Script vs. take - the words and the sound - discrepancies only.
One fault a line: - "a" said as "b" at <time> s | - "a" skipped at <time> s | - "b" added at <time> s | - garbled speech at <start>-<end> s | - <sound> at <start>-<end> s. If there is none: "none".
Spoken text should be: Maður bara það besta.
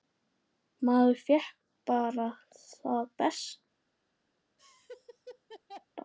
- "fékk" added at 1.3 s
- laugh at 4.6-5.9 s